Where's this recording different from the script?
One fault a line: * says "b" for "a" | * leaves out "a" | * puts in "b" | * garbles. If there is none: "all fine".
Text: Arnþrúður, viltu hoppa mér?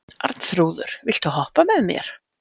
* puts in "með"